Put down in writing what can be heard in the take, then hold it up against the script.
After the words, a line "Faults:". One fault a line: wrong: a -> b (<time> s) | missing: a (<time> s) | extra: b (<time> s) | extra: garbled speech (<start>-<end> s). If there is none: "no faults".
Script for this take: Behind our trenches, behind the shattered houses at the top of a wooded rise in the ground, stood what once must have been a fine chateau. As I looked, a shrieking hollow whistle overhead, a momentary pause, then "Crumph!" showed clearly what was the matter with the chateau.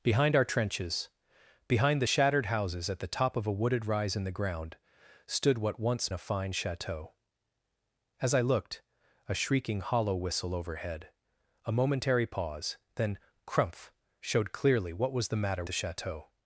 Behind our trenches, behind the shattered houses at the top of a wooded rise in the ground, stood what once a fine chateau. As I looked, a shrieking hollow whistle overhead, a momentary pause, then "Crumph!" showed clearly what was the matter the chateau.
Faults:
missing: must have been (6.1 s)
missing: with (15.6 s)